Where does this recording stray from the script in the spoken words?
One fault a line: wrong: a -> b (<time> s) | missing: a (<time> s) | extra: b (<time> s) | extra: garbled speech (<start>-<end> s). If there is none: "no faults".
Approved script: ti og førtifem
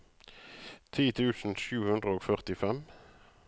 extra: tusen sju hundre (1.2 s)